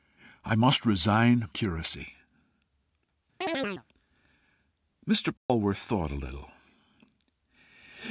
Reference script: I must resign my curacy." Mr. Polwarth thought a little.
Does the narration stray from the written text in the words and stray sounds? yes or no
yes